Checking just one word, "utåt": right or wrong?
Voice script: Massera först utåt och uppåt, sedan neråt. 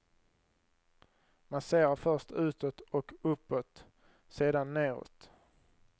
right